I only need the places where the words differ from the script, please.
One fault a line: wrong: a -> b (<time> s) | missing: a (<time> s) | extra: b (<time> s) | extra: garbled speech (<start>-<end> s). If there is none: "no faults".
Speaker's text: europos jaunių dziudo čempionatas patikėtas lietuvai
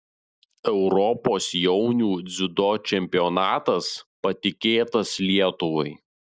no faults